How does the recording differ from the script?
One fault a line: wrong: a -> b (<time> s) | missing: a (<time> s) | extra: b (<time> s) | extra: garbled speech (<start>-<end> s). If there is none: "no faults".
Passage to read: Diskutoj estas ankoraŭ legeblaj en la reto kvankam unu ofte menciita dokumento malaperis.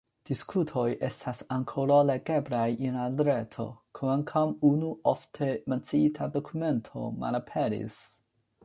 no faults